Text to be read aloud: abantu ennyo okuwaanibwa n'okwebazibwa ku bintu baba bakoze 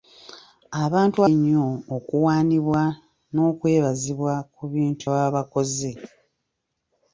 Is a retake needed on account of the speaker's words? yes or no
no